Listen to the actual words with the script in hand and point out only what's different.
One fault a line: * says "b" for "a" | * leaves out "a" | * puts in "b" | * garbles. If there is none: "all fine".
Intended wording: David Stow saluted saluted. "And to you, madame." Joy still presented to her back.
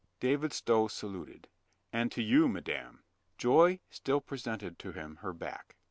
* leaves out "saluted"
* puts in "him"